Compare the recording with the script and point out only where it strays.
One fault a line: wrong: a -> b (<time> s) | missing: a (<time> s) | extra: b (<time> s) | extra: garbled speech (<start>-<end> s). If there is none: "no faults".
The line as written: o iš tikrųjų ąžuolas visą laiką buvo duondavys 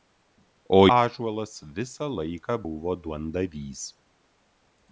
missing: iš tikrųjų (0.8 s)